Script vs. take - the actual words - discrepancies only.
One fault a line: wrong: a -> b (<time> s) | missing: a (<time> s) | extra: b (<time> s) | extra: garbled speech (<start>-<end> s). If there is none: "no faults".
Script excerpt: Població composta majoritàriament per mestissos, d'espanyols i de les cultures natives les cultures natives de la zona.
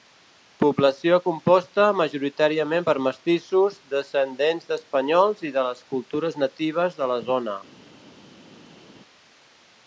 extra: descendents (3.9 s)
missing: les cultures natives (7.0 s)